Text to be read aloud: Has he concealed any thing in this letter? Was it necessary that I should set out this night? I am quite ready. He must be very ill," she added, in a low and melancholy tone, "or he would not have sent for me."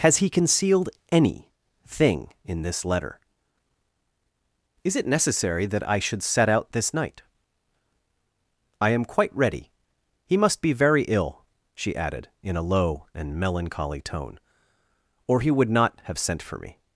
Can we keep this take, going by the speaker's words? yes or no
no